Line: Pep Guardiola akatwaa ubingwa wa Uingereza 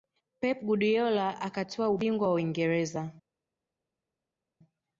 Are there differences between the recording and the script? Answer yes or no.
no